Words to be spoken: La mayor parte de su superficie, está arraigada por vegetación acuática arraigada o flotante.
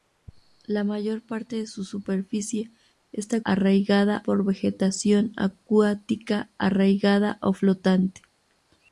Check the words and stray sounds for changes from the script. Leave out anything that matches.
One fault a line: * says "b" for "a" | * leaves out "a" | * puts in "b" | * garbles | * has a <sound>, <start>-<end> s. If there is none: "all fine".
all fine